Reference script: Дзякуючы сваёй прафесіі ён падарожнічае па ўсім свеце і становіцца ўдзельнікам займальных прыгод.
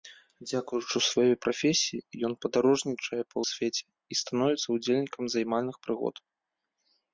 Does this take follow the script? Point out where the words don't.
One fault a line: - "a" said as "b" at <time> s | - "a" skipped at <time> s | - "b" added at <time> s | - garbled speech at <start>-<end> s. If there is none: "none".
- "ўсім" skipped at 3.4 s